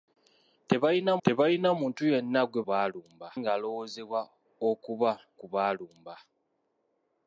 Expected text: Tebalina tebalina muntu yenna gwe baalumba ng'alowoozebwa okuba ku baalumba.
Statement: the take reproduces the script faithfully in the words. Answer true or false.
true